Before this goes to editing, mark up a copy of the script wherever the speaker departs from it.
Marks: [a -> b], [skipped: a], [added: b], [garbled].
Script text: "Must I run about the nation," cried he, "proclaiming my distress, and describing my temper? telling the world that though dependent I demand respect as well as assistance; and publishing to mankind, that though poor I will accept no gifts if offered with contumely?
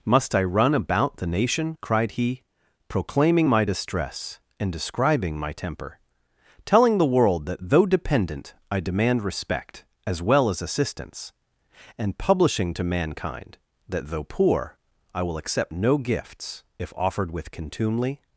"Must I run about the nation," cried he, "proclaiming my distress, and describing my temper? telling the world that though dependent I demand respect as well as assistance; and publishing to mankind, that though poor I will accept no gifts if offered with contumely?